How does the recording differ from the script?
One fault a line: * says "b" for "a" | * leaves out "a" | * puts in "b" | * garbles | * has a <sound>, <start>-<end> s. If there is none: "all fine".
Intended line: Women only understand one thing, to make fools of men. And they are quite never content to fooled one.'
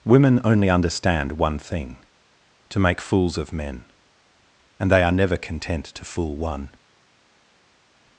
* leaves out "quite"
* says "fool" for "fooled"